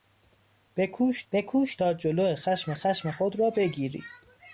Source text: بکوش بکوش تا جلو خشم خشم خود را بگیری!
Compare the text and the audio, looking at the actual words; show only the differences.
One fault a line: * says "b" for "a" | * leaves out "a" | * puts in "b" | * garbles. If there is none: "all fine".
all fine